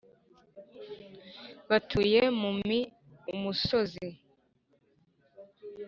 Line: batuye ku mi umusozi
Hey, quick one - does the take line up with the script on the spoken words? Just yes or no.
no